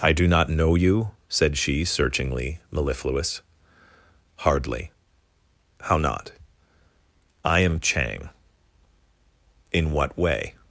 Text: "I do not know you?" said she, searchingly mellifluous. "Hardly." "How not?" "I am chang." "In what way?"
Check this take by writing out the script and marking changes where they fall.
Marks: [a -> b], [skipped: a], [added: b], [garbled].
"I do not know you?" said she, searchingly mellifluous. "Hardly." "How not?" "I am chang." "In what way?"